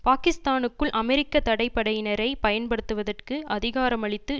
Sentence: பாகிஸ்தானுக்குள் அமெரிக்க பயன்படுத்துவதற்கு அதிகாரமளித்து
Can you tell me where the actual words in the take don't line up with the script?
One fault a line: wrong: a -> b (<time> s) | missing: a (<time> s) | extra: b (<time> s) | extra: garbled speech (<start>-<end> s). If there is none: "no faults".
extra: தடை படையினரை (1.4 s)